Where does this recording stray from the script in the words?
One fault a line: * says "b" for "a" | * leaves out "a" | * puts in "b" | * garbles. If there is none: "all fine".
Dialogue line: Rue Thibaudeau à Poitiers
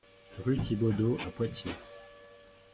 all fine